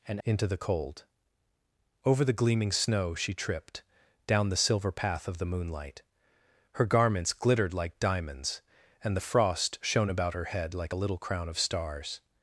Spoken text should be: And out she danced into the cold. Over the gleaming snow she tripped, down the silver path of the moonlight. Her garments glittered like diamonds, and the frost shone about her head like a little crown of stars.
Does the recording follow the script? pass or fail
fail